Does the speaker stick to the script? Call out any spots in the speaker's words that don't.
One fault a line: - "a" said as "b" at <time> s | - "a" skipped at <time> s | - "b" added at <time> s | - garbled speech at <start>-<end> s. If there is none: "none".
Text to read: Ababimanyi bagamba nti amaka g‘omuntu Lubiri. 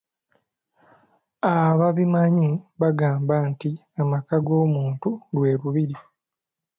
- "lwe" added at 5.3 s